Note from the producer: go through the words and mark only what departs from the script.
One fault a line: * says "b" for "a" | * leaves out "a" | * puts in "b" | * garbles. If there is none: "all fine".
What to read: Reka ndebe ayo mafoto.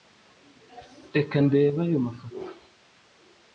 all fine